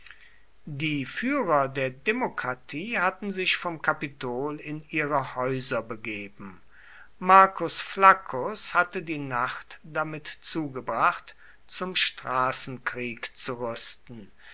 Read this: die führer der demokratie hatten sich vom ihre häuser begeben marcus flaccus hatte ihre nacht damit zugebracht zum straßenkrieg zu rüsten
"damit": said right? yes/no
yes